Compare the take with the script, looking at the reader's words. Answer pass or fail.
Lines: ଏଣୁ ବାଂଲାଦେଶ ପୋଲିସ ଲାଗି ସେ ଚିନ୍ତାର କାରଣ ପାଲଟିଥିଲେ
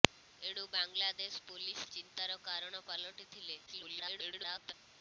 fail